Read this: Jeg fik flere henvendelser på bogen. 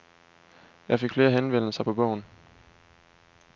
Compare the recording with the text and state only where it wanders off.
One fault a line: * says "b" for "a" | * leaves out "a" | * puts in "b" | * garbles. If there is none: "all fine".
all fine